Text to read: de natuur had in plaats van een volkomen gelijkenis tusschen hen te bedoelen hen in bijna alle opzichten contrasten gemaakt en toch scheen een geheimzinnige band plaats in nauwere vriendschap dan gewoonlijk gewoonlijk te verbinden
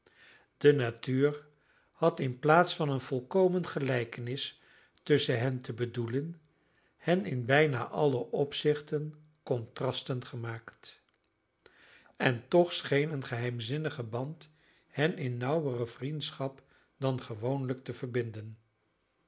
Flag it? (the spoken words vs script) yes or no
yes